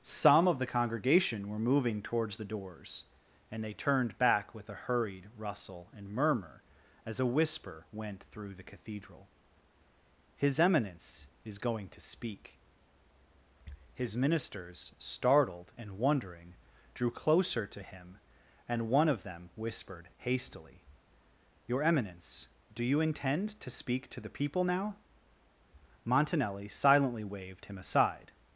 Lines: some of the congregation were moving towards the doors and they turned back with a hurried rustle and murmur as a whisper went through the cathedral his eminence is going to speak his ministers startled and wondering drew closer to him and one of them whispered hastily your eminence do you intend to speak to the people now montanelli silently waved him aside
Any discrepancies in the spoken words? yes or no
no